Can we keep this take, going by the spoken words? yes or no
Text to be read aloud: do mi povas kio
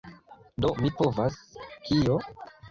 yes